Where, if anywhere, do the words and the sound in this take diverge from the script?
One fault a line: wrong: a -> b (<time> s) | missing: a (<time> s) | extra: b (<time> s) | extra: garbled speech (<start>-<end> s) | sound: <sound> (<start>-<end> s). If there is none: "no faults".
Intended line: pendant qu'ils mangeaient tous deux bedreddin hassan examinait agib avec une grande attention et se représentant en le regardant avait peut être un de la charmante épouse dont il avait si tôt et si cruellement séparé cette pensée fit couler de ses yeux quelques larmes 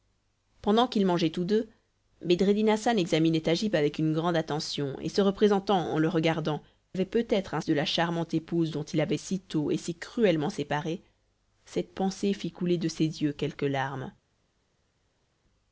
no faults